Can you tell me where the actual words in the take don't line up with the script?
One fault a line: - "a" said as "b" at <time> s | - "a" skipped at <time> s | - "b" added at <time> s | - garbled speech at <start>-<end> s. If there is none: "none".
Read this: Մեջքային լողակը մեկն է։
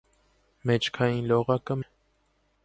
- "մեկն" skipped at 1.8 s